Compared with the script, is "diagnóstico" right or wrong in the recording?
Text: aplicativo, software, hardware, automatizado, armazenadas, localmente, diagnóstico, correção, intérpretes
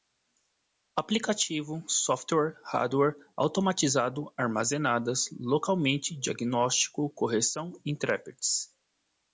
right